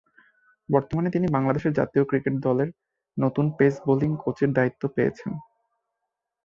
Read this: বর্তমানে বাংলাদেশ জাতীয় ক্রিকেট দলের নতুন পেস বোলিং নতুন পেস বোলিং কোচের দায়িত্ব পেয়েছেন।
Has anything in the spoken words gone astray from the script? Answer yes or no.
yes